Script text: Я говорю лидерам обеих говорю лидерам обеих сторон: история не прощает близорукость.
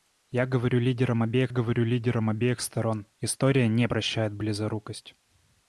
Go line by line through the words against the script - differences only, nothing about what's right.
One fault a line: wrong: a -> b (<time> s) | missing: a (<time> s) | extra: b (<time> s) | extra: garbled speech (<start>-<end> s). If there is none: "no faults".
no faults